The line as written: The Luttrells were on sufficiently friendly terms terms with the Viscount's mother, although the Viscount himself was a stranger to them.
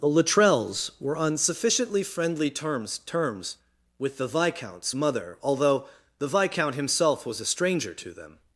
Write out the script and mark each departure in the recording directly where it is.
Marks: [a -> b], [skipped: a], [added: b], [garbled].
The Luttrells were on sufficiently friendly terms terms with the Viscount's mother, although the Viscount himself was a stranger to them.